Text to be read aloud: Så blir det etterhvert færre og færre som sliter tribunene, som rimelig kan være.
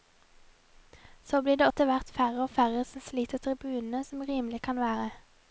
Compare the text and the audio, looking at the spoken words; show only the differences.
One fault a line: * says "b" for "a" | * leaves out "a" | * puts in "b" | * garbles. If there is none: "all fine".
all fine